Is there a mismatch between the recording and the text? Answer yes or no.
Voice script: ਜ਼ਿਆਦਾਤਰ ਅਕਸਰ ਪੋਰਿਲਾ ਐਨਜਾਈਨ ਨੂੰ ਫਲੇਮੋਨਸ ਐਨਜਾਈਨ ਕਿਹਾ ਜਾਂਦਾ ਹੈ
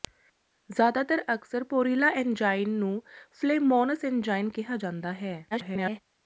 yes